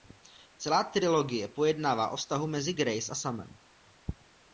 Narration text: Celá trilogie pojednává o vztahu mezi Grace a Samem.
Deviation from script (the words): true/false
false